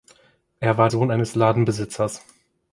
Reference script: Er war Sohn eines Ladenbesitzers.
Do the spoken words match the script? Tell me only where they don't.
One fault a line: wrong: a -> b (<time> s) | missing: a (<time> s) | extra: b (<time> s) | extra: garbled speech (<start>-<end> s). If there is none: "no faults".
no faults